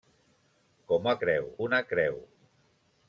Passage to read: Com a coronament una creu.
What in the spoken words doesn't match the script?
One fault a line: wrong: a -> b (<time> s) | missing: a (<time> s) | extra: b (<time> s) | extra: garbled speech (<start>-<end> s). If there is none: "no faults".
wrong: coronament -> creu (1.2 s)